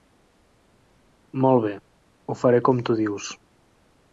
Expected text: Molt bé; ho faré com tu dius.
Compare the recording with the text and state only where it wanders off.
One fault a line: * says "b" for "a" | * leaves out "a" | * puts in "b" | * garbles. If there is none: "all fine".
all fine